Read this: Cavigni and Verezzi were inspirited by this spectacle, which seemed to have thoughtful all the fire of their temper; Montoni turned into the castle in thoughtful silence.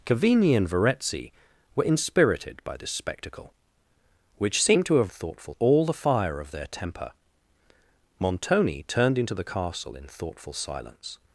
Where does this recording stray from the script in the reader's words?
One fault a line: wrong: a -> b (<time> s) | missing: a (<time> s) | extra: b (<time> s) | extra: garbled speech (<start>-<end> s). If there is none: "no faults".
no faults